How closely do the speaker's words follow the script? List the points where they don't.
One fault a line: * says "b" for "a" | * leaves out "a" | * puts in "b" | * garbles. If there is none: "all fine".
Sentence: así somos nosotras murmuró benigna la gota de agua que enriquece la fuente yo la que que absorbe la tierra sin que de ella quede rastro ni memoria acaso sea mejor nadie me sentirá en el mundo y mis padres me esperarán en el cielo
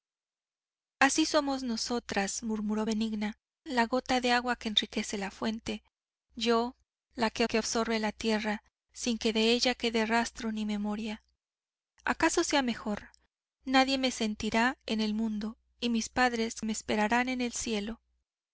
all fine